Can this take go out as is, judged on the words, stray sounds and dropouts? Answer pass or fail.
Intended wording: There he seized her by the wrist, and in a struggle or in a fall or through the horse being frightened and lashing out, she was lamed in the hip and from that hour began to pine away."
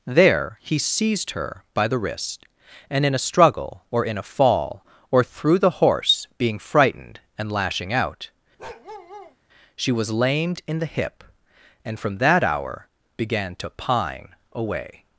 fail